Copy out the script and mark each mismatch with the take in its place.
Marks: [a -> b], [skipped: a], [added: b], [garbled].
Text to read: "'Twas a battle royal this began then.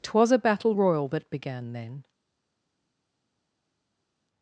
"'Twas a battle royal [this -> that] began then.